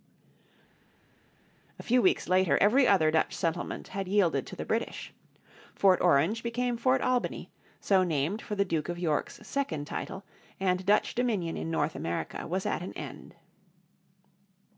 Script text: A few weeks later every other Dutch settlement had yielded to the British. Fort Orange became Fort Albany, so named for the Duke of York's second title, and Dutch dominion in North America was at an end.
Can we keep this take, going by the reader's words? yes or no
yes